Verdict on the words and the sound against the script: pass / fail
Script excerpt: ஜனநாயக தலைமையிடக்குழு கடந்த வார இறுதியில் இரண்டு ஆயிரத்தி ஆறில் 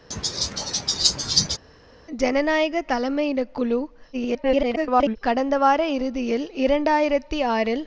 fail